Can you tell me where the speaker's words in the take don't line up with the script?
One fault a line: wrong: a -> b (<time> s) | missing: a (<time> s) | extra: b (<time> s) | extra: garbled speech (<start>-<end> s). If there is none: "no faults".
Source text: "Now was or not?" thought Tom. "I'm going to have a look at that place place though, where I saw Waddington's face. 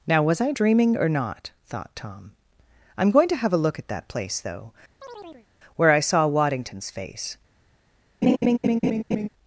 extra: I dreaming (0.4 s)
missing: place (4.4 s)